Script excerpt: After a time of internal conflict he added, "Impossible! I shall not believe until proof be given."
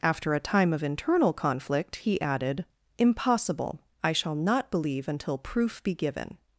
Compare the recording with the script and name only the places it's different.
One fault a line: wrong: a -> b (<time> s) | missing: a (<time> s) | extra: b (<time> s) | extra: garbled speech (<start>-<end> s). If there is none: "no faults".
no faults